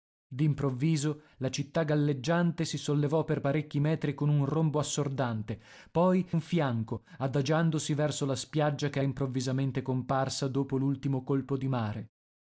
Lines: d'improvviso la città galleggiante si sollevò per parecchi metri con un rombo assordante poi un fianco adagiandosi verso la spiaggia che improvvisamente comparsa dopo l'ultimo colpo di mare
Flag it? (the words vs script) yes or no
no